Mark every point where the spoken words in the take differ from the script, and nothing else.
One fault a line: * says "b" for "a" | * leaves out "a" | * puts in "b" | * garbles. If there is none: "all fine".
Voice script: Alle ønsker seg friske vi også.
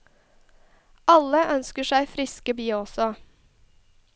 all fine